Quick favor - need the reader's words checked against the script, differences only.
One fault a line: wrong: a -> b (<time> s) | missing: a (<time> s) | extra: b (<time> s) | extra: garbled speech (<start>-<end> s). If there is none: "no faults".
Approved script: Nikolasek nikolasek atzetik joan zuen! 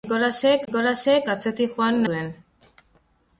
no faults